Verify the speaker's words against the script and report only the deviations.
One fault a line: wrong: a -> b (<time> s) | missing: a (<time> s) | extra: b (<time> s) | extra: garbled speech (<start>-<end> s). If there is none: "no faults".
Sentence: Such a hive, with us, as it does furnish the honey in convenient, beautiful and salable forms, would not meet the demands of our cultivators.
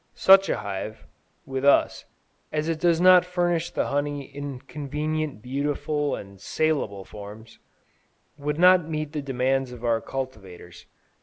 extra: not (3.0 s)